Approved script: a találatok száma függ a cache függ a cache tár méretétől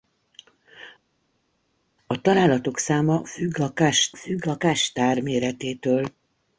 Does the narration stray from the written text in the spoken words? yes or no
no